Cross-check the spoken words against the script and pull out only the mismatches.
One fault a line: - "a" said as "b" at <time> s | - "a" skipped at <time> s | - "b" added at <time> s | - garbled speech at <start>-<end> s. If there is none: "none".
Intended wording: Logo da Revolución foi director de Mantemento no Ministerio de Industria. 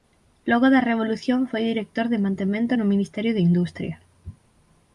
none